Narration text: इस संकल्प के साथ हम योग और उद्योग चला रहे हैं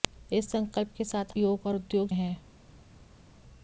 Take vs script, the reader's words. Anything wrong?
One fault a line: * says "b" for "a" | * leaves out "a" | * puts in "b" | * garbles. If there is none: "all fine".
* leaves out "हम"
* leaves out "चला रहे"